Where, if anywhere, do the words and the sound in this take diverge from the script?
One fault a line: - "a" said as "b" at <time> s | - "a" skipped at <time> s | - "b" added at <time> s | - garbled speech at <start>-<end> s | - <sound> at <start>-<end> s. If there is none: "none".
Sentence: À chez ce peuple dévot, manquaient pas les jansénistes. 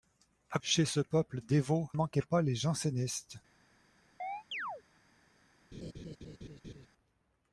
- chirp at 4.2-4.8 s
- laugh at 5.7-6.9 s